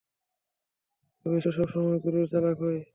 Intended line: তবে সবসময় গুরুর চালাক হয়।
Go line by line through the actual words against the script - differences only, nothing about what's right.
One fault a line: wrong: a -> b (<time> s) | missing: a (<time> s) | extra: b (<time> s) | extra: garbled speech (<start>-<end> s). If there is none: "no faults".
no faults